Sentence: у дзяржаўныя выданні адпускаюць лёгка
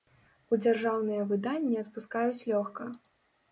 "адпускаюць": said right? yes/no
yes